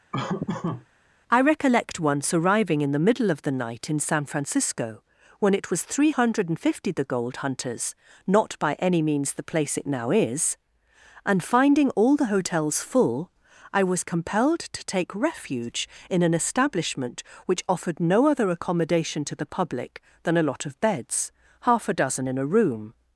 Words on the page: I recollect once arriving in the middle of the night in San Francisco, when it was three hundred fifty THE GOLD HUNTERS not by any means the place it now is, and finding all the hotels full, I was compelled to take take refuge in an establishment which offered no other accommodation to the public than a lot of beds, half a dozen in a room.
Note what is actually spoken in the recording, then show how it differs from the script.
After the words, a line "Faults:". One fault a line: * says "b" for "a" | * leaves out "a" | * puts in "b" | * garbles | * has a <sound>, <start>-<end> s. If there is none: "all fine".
I recollect once arriving in the middle of the night in San Francisco, when it was three hundred fifty THE GOLD HUNTERS not by any means the place it now is, and finding all the hotels full, I was compelled to take refuge in an establishment which offered no other accommodation to the public than a lot of beds, half a dozen in a room.
Faults:
* has a laugh, 0.1-0.9 s
* leaves out "take"